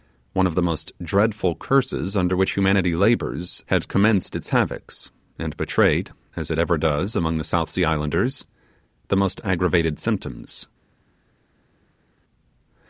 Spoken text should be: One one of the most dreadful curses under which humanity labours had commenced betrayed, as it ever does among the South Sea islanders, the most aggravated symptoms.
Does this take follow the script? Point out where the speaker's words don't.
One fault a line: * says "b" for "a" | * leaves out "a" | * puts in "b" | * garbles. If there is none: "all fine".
* leaves out "one"
* puts in "its havocks and"